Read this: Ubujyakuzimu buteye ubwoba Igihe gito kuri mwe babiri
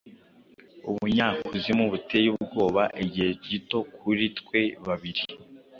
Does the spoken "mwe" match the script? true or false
false